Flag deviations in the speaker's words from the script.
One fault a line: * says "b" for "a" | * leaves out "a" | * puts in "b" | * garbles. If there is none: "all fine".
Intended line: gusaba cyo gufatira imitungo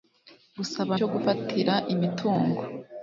all fine